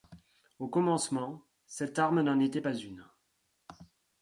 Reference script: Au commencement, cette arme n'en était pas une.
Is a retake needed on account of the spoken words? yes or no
no